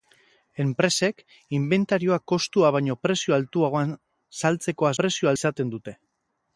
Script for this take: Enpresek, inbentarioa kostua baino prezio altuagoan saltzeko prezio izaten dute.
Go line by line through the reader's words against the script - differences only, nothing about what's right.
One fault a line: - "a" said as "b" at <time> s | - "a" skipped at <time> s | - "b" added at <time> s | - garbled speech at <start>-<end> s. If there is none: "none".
none